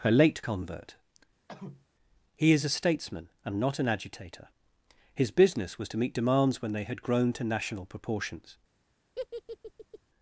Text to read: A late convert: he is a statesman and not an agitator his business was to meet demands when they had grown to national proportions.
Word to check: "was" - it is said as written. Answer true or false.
true